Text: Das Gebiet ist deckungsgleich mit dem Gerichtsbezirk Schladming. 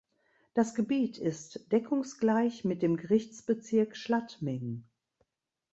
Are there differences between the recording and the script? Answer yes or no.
no